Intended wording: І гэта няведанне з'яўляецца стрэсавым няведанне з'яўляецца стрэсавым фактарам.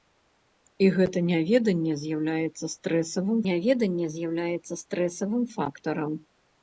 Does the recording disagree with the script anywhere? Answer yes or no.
no